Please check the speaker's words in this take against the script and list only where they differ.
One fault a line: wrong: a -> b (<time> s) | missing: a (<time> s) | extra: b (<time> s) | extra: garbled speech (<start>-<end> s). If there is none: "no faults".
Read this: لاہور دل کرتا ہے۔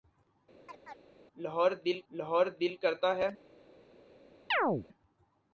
extra: لاہور دل (2.1 s)